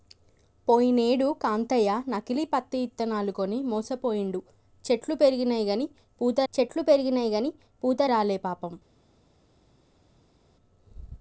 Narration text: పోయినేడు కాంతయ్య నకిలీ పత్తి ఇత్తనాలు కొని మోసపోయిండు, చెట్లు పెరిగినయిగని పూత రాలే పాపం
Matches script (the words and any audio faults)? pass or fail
fail